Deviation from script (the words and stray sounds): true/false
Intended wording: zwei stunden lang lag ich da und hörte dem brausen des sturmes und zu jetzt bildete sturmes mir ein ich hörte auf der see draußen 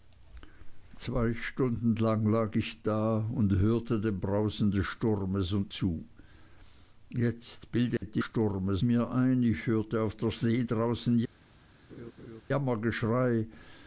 true